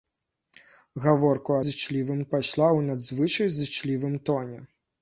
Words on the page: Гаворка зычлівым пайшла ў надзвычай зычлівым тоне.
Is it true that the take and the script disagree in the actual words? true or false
false